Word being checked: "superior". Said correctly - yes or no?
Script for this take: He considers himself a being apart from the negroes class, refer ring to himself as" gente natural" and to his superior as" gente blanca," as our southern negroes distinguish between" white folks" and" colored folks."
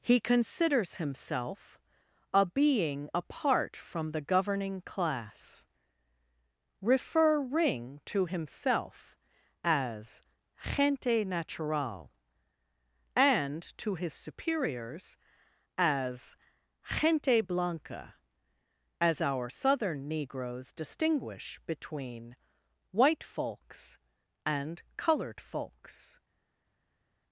no